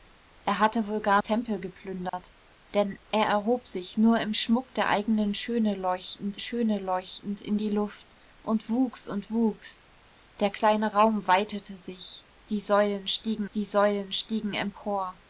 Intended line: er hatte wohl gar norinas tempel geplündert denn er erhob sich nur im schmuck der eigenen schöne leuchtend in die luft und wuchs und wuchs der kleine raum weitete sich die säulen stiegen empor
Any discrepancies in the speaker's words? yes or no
yes